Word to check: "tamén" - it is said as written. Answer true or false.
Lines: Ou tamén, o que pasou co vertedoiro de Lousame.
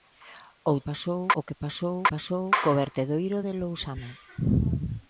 false